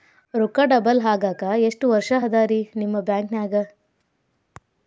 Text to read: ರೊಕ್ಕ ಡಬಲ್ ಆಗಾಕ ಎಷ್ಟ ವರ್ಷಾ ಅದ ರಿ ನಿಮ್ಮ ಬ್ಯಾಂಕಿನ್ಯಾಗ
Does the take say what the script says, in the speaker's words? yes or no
yes